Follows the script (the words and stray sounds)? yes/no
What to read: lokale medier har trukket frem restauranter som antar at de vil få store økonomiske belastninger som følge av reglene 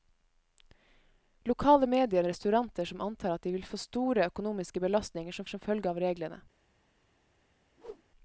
no